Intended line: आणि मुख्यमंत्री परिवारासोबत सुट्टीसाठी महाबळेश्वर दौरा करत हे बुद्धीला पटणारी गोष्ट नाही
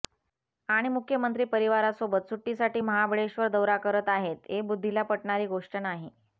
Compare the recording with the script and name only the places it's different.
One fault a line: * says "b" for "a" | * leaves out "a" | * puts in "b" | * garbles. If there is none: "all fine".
* puts in "आहेत"